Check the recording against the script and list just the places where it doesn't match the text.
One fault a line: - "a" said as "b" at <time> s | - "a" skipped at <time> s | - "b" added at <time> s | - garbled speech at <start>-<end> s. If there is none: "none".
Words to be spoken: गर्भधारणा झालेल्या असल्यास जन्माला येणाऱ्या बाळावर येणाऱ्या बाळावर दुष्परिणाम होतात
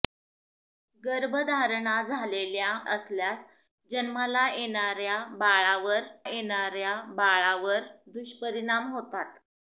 none